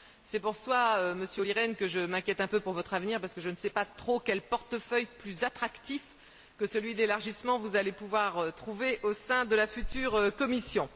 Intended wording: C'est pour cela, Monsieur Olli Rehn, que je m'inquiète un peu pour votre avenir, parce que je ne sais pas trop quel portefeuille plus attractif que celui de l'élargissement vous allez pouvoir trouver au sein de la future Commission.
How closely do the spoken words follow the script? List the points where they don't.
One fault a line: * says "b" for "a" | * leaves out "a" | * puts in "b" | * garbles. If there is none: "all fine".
all fine